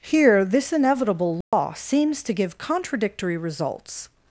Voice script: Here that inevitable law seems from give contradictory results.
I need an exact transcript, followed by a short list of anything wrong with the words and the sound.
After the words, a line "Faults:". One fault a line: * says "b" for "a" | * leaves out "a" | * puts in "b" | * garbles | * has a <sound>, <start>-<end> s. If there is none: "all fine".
Here this inevitable law seems to give contradictory results.
Faults:
* says "this" for "that"
* has a dropout, 1.4-1.5 s
* says "to" for "from"